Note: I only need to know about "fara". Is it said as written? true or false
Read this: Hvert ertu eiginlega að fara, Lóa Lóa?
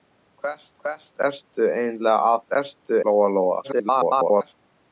false